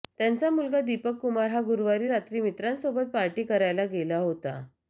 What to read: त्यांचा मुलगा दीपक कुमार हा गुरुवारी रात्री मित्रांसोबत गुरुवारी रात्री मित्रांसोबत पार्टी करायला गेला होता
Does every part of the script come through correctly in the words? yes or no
no